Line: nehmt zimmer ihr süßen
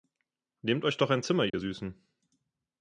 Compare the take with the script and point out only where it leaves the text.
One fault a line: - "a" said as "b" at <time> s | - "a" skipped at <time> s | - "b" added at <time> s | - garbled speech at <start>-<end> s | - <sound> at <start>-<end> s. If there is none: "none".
- "euch doch ein" added at 0.8 s
- dropout at 1.5-1.5 s